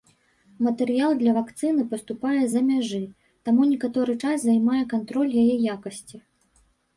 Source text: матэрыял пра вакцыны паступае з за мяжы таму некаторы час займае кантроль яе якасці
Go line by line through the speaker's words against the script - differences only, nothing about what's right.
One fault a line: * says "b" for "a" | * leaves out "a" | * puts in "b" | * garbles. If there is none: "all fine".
* says "для" for "пра"